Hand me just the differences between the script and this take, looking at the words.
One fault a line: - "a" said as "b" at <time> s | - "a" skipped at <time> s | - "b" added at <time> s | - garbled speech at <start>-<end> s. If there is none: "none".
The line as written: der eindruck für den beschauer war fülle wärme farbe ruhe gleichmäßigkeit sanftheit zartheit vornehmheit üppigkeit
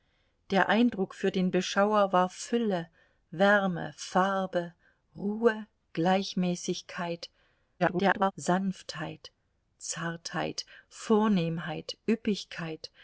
- garbled speech at 7.8-8.3 s